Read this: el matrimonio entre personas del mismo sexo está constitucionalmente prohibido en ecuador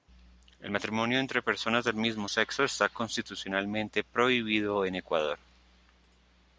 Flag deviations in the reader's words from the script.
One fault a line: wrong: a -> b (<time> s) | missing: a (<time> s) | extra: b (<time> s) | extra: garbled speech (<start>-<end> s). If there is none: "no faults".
no faults